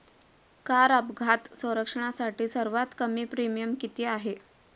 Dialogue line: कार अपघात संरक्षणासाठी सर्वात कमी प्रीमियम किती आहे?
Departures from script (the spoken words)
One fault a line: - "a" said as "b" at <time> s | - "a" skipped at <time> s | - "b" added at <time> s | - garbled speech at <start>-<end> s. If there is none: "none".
none